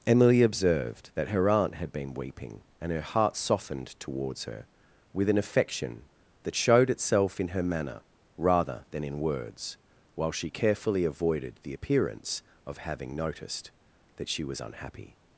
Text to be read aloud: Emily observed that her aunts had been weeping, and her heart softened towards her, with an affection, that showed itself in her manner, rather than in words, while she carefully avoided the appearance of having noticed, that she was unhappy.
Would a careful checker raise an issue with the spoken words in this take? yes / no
yes